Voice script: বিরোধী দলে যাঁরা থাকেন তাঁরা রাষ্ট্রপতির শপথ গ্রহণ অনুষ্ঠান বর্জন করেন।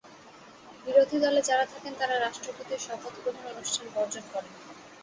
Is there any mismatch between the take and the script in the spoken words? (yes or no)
no